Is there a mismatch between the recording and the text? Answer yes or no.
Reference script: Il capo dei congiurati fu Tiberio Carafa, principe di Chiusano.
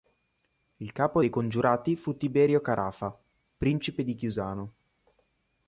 no